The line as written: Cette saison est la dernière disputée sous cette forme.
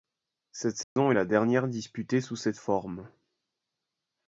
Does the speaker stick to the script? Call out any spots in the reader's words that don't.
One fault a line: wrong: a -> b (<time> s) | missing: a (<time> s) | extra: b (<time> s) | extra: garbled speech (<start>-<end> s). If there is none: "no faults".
no faults